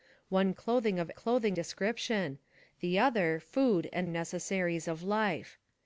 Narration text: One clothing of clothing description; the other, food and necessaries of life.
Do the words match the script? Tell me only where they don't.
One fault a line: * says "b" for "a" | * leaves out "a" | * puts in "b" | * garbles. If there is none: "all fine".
all fine